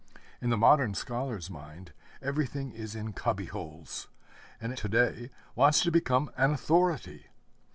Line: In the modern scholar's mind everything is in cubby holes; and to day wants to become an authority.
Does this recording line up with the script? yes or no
yes